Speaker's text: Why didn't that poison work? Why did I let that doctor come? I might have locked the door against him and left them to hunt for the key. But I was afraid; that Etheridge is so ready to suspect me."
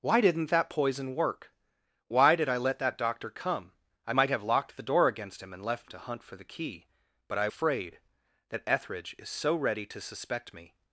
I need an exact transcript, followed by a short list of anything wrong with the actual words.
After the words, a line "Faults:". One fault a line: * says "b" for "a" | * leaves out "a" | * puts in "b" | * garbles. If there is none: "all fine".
Why didn't that poison work? Why did I let that doctor come? I might have locked the door against him and left to hunt for the key. But I afraid; that Etheridge is so ready to suspect me."
Faults:
* leaves out "them"
* leaves out "was"